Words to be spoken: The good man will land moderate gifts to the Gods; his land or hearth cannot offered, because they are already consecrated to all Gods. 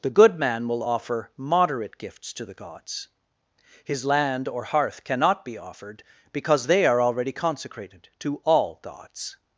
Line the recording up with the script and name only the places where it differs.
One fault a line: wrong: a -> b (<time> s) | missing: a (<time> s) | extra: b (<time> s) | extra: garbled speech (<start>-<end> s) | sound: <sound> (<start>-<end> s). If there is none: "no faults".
wrong: land -> offer (0.8 s)
extra: be (5.4 s)